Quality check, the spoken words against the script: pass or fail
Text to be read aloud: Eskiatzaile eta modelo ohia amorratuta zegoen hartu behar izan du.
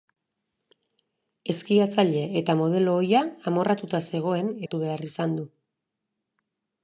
pass